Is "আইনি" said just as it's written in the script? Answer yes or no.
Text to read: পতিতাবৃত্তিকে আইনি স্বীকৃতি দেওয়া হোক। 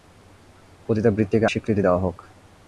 no